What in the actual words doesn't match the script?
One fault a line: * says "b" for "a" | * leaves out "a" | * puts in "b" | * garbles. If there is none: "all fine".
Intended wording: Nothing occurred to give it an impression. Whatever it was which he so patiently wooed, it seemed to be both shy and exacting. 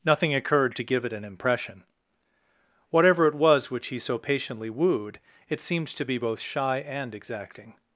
all fine